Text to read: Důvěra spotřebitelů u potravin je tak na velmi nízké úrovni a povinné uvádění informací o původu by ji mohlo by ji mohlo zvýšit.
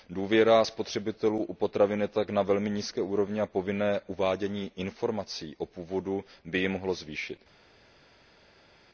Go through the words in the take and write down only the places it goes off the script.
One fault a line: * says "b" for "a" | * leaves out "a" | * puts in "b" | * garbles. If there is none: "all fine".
* leaves out "by ji mohlo"